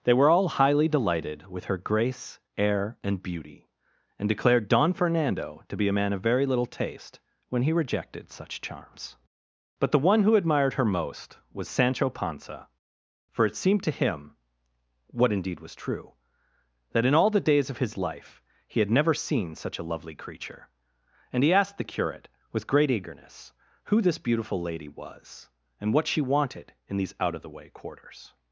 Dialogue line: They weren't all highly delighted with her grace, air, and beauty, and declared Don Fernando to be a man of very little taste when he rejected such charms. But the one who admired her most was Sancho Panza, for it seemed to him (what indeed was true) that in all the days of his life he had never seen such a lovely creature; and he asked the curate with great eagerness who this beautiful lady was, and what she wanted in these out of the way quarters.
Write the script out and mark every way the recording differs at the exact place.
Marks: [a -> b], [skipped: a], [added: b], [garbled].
They [weren't -> were] all highly delighted with her grace, air, and beauty, and declared Don Fernando to be a man of very little taste when he rejected such charms. But the one who admired her most was Sancho Panza, for it seemed to him (what indeed was true) that in all the days of his life he had never seen such a lovely creature; and he asked the curate with great eagerness who this beautiful lady was, and what she wanted in these out of the way quarters.